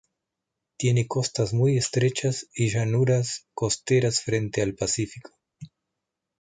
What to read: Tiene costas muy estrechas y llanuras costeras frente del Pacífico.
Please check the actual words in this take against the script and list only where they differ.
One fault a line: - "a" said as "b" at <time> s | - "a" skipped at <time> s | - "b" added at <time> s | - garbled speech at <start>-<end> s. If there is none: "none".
- "del" said as "al" at 4.6 s